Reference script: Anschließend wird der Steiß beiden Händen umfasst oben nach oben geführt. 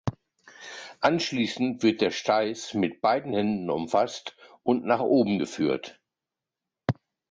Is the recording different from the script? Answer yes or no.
yes